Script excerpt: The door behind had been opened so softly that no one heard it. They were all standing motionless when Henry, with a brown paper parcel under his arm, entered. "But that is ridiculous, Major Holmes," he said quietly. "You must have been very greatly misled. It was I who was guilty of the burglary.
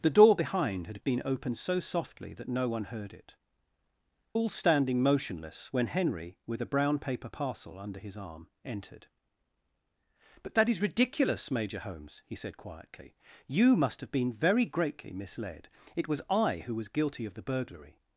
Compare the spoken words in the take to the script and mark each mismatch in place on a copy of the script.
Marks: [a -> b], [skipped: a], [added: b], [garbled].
The door behind had been opened so softly that no one heard it. [skipped: They were] all standing motionless when Henry, with a brown paper parcel under his arm, entered. "But that is ridiculous, Major Holmes," he said quietly. "You must have been very greatly misled. It was I who was guilty of the burglary.